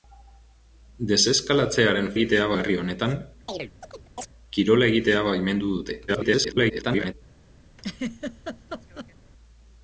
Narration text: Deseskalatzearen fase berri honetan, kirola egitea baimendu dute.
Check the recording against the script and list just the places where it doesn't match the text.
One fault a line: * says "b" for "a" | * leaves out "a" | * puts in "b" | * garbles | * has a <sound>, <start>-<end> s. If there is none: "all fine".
* says "egitea" for "fase"
* has a chirp, 3.5-4.3 s
* garbles
* has a laugh, 7.8-9.1 s